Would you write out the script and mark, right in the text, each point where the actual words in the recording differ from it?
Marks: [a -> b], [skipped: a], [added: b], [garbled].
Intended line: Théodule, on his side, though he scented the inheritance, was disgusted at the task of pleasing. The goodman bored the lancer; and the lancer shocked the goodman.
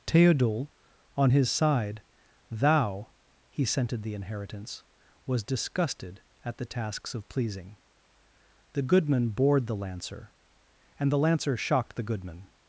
Théodule, on his side, [though -> thou] he scented the inheritance, was disgusted at the [task -> tasks] of pleasing. The goodman bored the lancer; and the lancer shocked the goodman.